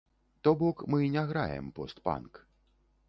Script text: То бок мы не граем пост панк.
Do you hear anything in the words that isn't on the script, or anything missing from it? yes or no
no